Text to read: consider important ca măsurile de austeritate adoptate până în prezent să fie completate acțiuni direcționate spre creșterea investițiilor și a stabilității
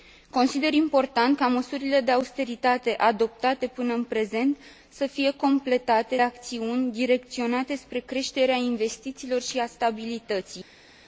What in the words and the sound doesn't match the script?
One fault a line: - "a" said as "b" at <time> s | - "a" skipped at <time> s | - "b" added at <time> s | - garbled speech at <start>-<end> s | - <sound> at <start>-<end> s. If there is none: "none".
none